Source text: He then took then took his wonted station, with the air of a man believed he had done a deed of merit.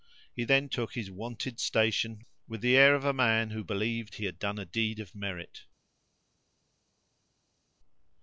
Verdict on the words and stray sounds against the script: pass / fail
fail